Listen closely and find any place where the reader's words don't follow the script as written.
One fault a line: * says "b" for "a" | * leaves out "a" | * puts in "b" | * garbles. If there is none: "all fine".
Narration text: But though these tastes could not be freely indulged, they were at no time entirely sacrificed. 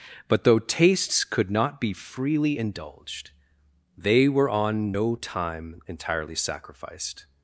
* leaves out "these"
* says "on" for "at"